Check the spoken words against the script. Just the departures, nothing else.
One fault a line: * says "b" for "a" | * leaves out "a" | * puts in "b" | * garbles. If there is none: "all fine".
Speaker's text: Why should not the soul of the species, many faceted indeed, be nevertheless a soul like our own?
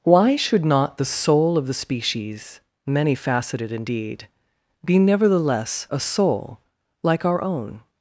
all fine